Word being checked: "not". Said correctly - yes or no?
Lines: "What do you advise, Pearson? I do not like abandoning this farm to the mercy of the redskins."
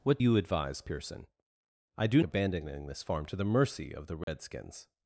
no